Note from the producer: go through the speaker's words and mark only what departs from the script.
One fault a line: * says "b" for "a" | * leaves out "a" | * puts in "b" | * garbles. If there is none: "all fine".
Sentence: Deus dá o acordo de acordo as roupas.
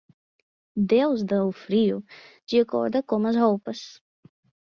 * says "frio" for "acordo"
* puts in "com"